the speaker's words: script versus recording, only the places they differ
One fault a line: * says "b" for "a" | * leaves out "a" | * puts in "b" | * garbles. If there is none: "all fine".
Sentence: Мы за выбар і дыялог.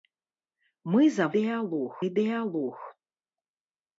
* says "дыялог" for "выбар"